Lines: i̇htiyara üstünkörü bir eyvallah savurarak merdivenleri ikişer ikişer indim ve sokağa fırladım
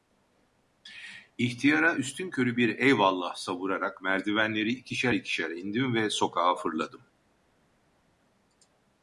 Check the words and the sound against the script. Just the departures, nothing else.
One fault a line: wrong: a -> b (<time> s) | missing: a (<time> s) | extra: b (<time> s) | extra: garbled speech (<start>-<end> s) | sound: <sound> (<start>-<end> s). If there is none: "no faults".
no faults